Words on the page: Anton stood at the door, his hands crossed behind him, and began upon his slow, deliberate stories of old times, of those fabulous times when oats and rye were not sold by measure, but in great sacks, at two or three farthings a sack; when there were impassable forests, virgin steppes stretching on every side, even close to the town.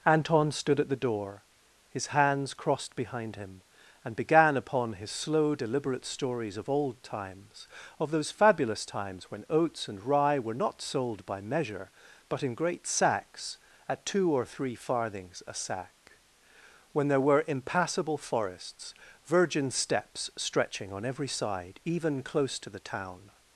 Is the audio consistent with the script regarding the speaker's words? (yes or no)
yes